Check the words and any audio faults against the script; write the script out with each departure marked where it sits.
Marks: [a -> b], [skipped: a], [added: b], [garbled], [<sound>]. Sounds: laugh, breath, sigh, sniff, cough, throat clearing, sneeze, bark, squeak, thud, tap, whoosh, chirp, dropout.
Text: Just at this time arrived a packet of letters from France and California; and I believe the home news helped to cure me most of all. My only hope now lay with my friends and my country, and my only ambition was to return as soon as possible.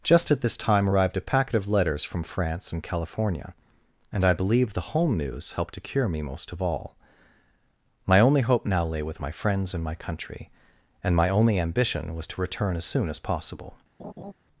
Just at this time arrived a packet of letters from France and California; and I believe the home news helped to cure me most of all. My only hope now lay with my friends and my country, and my only ambition was to return as soon as possible. [laugh]